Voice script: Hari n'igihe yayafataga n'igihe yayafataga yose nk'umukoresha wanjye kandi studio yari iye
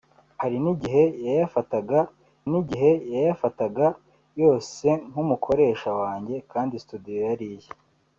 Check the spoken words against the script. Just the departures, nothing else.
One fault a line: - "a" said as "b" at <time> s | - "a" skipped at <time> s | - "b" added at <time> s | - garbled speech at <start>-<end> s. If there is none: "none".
none